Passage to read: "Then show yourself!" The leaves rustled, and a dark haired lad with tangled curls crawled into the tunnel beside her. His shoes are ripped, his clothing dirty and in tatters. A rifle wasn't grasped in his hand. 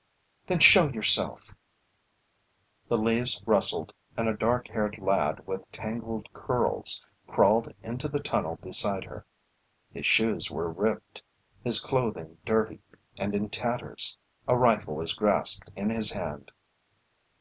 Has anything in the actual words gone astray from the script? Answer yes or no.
yes